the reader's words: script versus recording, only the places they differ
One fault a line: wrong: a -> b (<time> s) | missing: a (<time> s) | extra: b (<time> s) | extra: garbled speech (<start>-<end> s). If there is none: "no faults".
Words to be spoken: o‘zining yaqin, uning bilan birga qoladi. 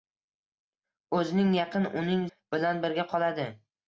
no faults